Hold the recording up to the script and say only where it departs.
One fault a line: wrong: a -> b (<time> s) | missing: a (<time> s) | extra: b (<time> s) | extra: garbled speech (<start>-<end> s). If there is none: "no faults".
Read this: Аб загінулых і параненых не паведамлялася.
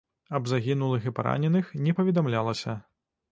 no faults